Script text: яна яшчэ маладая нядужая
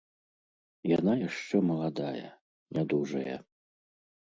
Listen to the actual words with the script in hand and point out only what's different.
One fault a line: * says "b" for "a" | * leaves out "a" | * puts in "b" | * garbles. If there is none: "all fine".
all fine